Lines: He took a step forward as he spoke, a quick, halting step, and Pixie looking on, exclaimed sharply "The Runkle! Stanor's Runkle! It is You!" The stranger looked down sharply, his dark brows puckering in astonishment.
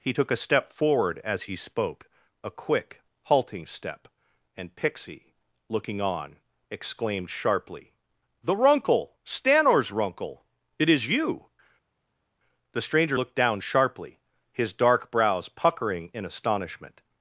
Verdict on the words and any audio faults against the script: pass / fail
pass